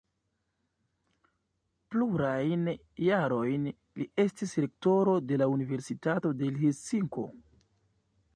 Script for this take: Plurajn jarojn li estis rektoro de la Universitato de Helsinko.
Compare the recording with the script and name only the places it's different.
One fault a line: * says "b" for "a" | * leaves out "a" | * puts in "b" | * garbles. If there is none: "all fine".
all fine